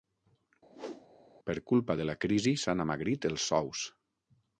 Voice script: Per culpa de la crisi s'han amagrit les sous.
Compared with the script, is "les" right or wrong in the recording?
wrong